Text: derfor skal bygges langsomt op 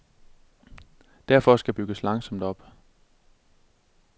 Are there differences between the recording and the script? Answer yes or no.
no